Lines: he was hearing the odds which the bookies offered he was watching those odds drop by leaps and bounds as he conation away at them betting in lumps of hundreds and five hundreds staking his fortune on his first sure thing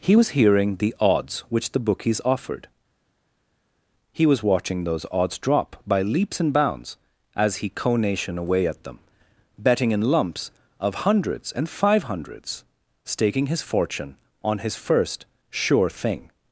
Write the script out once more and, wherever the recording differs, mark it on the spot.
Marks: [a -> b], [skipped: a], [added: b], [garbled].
he was hearing the odds which the bookies offered he was watching those odds drop by leaps and bounds as he conation away at them betting in lumps of hundreds and five hundreds staking his fortune on his first sure thing